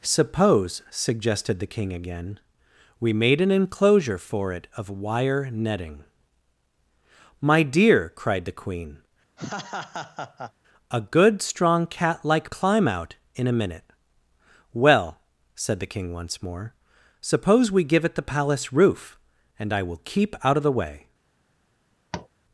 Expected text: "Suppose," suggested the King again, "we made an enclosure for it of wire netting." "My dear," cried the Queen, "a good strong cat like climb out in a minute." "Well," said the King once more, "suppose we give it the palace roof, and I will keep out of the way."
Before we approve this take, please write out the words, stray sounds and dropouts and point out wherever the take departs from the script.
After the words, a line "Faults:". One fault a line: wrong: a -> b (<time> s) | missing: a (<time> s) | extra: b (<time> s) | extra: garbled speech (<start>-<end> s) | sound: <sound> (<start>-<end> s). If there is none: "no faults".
"Suppose," suggested the King again, "we made an enclosure for it of wire netting." "My dear," cried the Queen, "a good strong cat like climb out in a minute." "Well," said the King once more, "suppose we give it the palace roof, and I will keep out of the way."
Faults:
sound: laugh (9.4-10.5 s)
sound: tap (22.1-22.3 s)